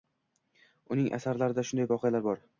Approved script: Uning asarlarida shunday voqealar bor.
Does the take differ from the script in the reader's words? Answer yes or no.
no